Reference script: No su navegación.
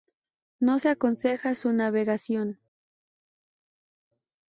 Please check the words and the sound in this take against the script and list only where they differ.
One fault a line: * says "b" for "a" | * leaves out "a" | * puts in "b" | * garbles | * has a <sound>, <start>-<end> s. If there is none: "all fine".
* puts in "se aconseja"